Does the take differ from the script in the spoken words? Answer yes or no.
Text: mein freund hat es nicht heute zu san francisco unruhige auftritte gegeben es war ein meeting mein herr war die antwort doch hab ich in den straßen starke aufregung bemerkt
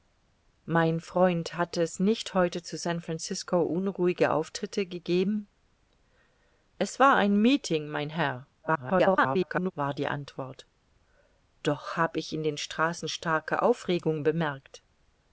yes